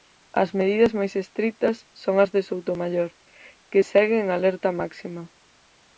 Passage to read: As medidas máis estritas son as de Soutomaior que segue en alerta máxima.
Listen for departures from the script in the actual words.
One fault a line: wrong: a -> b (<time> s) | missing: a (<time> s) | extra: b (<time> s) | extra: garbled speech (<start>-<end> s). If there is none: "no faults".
no faults